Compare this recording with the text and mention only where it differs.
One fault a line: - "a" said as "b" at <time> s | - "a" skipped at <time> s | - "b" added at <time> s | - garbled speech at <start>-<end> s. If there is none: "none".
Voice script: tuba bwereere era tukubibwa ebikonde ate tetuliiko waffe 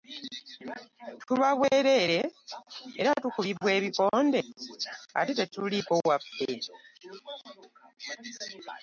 none